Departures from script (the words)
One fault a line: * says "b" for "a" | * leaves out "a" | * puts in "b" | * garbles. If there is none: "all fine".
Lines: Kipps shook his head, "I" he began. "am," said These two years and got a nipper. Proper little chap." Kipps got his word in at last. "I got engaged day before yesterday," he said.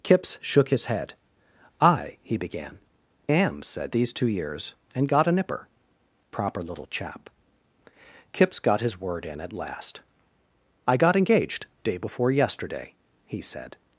all fine